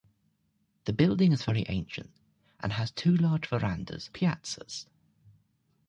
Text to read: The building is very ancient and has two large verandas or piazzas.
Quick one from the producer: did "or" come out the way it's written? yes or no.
no